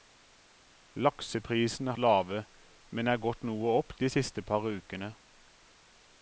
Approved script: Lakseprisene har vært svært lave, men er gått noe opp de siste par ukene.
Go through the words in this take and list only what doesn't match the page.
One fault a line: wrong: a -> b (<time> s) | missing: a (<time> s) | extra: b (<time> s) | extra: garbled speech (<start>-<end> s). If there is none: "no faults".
missing: har vært svært (1.9 s)